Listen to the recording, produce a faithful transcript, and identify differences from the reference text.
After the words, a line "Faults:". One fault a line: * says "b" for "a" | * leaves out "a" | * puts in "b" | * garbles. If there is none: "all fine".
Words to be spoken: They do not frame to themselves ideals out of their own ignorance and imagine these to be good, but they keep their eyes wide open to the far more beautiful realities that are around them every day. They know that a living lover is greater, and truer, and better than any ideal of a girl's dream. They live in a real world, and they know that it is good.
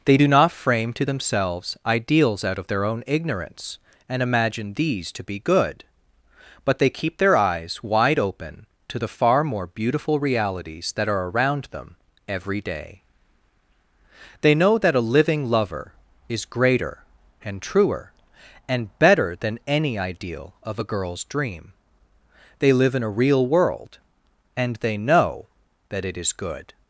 They do not frame to themselves ideals out of their own ignorance and imagine these to be good, but they keep their eyes wide open to the far more beautiful realities that are around them every day. They know that a living lover is greater, and truer, and better than any ideal of a girl's dream. They live in a real world, and they know that it is good.
Faults:
all fine